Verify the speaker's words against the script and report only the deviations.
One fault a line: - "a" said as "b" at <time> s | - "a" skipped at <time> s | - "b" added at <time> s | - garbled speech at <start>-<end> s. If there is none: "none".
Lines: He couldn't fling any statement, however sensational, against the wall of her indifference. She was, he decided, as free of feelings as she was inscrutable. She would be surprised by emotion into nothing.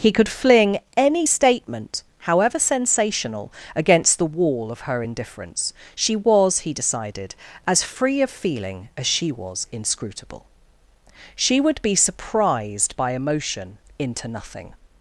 - "couldn't" said as "could" at 0.1 s
- "feelings" said as "feeling" at 8.3 s